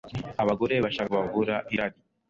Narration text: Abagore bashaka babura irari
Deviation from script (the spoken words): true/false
false